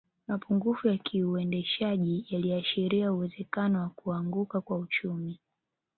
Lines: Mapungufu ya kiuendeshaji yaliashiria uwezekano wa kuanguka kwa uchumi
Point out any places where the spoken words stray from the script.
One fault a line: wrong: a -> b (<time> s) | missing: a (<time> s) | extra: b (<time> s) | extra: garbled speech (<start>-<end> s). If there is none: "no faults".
no faults